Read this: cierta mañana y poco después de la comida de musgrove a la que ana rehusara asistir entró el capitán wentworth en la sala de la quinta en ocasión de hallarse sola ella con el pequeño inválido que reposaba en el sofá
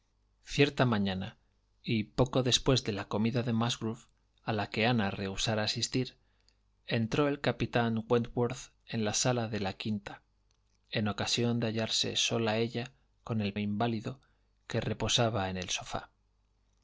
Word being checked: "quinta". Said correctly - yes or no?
yes